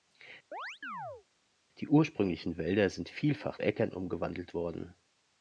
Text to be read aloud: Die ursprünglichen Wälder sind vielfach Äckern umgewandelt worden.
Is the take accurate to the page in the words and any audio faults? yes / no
no